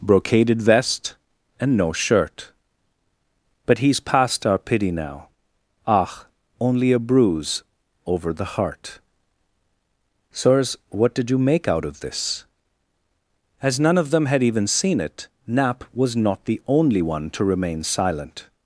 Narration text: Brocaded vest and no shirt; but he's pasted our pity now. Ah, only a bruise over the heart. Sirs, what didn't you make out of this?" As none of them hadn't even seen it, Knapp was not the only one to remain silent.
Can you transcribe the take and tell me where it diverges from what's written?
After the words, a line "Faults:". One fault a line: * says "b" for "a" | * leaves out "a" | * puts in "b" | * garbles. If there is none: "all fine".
Brocaded vest and no shirt; but he's past our pity now. Ah, only a bruise over the heart. Sirs, what did you make out of this?" As none of them had even seen it, Knapp was not the only one to remain silent.
Faults:
* says "past" for "pasted"
* says "did" for "didn't"
* says "had" for "hadn't"